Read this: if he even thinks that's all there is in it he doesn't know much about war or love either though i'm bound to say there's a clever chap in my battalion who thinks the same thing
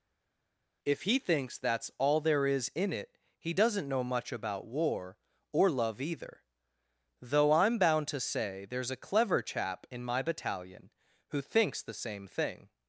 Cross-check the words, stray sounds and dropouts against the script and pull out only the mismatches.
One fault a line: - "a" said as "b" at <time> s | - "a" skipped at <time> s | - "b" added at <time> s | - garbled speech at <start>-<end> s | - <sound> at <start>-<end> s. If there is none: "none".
- "even" skipped at 1.2 s